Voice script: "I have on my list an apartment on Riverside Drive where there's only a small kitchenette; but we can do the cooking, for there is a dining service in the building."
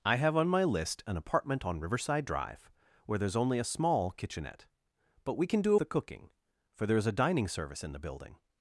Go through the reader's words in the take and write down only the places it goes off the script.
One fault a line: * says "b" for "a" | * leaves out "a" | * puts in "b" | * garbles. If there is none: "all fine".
all fine